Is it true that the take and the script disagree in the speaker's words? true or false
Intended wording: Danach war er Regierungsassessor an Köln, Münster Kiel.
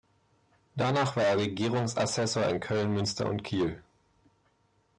true